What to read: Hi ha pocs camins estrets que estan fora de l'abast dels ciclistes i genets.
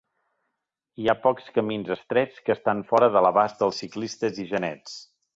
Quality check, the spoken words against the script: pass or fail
pass